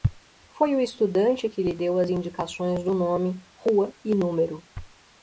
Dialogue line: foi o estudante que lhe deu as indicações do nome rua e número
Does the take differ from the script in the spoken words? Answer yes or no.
no